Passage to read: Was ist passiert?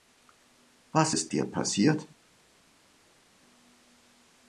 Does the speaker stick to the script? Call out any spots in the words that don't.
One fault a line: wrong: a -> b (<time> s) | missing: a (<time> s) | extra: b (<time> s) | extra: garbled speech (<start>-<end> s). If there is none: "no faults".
extra: dir (1.3 s)